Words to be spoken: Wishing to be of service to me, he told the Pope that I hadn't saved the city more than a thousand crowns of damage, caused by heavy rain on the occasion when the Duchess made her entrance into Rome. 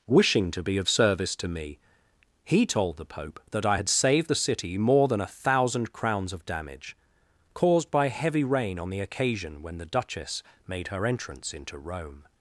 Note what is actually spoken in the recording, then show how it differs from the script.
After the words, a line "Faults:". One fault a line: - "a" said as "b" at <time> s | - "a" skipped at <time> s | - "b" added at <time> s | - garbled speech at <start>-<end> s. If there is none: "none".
Wishing to be of service to me, he told the Pope that I had saved the city more than a thousand crowns of damage, caused by heavy rain on the occasion when the Duchess made her entrance into Rome.
Faults:
- "hadn't" said as "had" at 3.8 s